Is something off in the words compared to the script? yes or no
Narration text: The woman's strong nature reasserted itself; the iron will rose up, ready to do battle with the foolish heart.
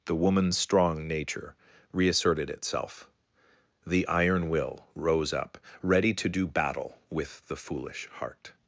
no